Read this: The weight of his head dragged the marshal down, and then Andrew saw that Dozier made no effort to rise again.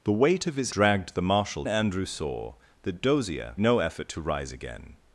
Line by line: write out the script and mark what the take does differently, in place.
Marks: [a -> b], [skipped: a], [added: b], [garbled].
The weight of his [skipped: head] dragged the marshal [skipped: down, and then] Andrew saw that Dozier [skipped: made] no effort to rise again.